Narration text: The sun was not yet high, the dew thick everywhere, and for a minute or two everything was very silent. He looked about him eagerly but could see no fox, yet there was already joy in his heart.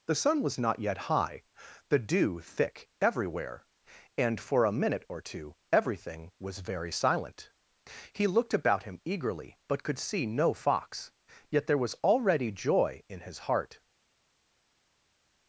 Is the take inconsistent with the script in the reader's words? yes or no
no